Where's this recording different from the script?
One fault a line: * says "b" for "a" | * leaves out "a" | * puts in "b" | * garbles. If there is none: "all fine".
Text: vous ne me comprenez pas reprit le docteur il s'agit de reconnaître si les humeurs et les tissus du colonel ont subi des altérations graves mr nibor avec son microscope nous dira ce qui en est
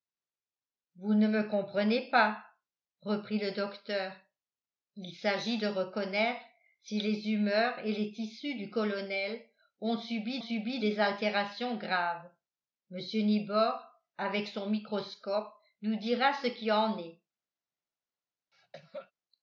* puts in "subi"